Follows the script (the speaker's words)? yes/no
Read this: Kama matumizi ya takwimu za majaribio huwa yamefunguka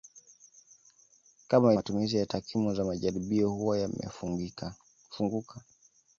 yes